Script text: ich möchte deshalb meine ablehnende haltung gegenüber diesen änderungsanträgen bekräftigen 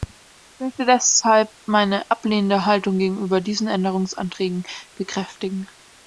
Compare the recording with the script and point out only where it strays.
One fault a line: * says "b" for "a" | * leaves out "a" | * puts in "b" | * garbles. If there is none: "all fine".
all fine